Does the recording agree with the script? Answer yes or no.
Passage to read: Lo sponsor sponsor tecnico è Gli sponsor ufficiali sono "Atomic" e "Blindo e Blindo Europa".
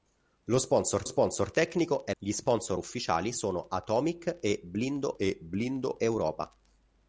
yes